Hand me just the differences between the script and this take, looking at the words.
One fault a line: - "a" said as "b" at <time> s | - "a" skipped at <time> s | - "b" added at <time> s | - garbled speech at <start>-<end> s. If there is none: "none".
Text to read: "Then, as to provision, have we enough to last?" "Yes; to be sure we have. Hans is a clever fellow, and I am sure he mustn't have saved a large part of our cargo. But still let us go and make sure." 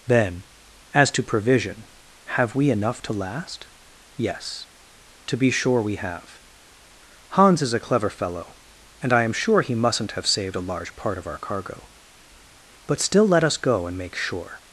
none